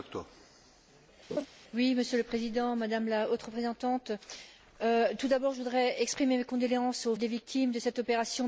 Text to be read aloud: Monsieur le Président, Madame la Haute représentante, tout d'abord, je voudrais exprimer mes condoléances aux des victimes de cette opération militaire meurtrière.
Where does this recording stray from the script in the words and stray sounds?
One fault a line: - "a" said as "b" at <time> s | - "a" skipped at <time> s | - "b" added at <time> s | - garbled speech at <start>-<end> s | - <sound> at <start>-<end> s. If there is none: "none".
- laugh at 1.3-1.5 s